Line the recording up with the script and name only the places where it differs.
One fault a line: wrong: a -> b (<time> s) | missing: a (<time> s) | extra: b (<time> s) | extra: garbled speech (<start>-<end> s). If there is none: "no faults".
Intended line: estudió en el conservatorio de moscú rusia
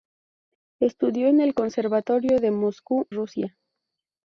no faults